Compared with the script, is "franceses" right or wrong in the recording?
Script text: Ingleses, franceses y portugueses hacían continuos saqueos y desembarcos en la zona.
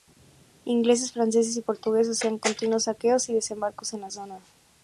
right